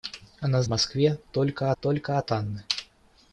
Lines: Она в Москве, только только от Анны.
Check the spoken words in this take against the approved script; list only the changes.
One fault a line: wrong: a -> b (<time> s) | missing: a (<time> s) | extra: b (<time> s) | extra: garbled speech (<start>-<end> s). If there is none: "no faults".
no faults